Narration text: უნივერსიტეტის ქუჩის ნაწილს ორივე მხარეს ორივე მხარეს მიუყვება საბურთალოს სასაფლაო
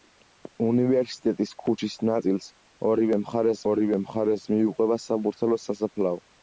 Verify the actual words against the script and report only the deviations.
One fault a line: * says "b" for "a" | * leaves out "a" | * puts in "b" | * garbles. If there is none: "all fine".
all fine